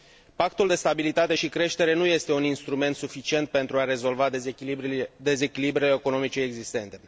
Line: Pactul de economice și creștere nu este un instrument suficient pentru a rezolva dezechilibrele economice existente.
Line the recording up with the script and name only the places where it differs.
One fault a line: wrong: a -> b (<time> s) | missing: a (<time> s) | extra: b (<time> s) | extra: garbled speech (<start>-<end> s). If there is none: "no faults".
wrong: economice -> stabilitate (0.7 s)